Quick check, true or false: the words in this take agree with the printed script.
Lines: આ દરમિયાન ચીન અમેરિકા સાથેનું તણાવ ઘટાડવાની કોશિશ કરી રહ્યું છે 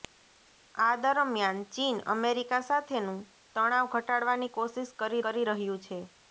false